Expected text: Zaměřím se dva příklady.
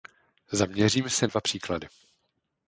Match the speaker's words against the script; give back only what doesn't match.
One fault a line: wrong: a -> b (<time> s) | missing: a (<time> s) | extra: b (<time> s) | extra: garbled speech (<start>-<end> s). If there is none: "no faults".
no faults